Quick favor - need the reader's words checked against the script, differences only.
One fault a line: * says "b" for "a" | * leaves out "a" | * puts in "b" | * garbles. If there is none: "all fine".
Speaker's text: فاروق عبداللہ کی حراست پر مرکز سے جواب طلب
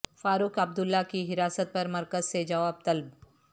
all fine